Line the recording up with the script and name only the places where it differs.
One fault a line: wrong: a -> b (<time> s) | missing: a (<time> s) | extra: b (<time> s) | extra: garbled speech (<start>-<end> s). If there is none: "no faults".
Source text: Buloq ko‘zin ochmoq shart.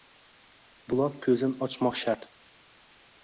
no faults